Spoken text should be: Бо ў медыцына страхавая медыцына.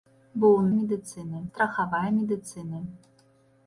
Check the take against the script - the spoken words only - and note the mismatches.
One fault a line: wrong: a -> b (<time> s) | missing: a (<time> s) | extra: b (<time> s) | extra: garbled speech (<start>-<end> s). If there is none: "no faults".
no faults